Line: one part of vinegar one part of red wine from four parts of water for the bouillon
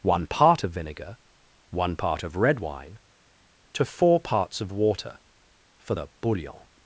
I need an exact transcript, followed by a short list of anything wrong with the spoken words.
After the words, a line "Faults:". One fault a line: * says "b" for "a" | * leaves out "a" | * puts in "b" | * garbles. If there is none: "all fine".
one part of vinegar one part of red wine to four parts of water for the bouillon
Faults:
* says "to" for "from"